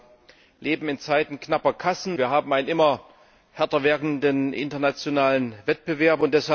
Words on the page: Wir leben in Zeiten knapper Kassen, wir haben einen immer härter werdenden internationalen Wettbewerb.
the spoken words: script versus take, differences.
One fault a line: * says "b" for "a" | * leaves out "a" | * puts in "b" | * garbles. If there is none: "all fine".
all fine